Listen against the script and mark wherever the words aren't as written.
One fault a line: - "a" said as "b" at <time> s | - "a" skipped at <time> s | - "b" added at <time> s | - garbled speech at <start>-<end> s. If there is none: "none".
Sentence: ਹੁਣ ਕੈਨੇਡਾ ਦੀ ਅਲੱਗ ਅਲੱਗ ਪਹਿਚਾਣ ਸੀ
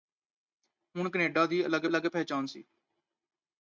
none